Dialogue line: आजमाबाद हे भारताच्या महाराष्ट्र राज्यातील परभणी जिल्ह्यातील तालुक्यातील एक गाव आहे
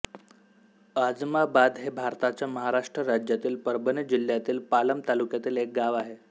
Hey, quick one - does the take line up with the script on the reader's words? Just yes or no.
no